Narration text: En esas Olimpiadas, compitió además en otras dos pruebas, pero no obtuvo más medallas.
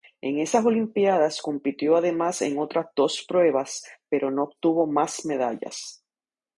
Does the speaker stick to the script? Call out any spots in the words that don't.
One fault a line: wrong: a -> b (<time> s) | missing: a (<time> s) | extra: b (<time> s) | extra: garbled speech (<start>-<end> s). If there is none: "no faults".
no faults